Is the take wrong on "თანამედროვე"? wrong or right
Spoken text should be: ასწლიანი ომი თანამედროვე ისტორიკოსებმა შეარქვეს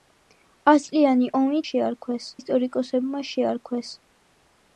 wrong